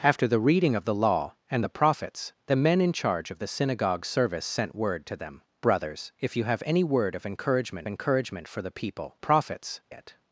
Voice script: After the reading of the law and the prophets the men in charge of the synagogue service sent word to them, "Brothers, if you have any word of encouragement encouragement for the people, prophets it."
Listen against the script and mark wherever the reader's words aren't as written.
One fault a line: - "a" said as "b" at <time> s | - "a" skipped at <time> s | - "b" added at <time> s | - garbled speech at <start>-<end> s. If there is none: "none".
none